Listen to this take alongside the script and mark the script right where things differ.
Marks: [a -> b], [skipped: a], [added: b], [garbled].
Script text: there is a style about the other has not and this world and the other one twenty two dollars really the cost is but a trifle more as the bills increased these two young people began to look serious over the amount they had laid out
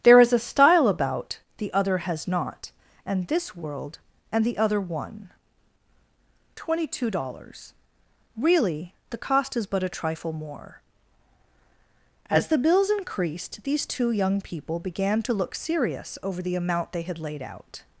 there is a style about the other has not and this world and the other one twenty two dollars really the cost is but a trifle more as the bills increased these two young people began to look serious over the amount they had laid out